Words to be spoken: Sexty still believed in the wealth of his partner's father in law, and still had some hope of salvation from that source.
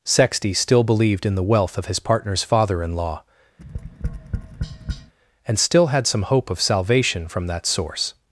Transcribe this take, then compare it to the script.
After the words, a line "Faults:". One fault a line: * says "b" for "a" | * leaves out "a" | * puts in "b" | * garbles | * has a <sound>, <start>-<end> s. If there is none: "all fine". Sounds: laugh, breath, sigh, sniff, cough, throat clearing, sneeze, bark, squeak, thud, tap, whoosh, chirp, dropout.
Sexty still believed in the wealth of his partner's father in law, and still had some hope of salvation from that source.
Faults:
* has a tap, 3.6-5.1 s